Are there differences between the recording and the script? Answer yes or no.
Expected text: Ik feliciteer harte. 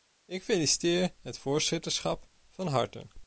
yes